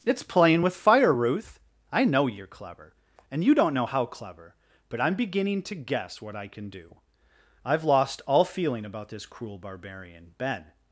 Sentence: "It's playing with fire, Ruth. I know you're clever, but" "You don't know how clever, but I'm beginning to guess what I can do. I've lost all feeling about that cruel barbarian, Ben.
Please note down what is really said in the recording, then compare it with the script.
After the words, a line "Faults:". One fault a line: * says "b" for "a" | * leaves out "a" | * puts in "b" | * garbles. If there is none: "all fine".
"It's playing with fire, Ruth. I know you're clever, and" "You don't know how clever, but I'm beginning to guess what I can do. I've lost all feeling about this cruel barbarian, Ben.
Faults:
* says "and" for "but"
* says "this" for "that"